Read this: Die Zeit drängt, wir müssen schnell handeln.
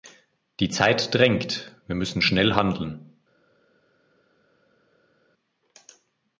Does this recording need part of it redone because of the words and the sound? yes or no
no